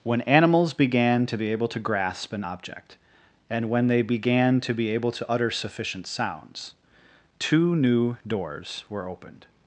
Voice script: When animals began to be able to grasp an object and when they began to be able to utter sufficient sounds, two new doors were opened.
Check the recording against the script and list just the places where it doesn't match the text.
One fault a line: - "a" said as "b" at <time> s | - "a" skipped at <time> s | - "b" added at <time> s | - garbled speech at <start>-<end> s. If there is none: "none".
none